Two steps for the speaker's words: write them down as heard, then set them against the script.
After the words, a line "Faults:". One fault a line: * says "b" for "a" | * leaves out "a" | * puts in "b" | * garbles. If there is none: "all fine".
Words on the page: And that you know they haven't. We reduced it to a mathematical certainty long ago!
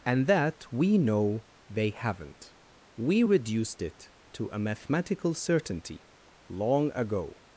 And that we know they haven't. We reduced it to a mathematical certainty long ago!
Faults:
* says "we" for "you"